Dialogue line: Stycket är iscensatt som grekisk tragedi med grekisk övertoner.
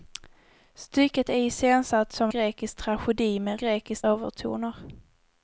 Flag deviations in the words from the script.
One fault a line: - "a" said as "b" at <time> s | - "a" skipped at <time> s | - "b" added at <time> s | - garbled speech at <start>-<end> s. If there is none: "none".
none